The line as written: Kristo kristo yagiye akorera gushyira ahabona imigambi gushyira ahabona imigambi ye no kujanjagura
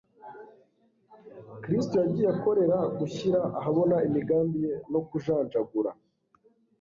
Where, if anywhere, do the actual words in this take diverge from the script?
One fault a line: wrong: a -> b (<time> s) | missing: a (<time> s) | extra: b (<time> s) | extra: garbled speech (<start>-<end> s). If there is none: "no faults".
missing: kristo (1.9 s)
missing: gushyira ahabona imigambi (4.6 s)